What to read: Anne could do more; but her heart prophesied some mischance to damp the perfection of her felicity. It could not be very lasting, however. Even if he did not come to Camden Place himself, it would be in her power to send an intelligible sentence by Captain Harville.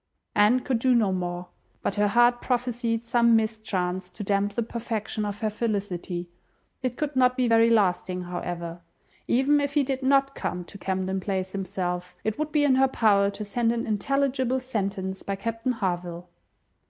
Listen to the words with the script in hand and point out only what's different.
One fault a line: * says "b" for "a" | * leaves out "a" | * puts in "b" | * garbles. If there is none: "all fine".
* puts in "no"